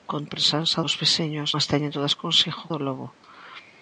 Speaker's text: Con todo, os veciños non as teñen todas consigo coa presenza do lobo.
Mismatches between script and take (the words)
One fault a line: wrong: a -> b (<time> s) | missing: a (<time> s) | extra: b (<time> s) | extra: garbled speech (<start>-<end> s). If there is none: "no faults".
wrong: todo -> presenza (0.3 s)
missing: non (1.5 s)
missing: coa presenza (2.6 s)